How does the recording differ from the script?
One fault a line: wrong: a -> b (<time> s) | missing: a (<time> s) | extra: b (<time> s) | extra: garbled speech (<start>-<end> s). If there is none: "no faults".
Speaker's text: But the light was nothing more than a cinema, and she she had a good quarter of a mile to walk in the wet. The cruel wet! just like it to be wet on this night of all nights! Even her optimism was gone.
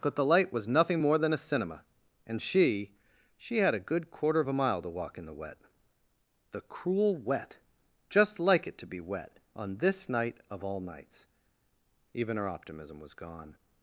no faults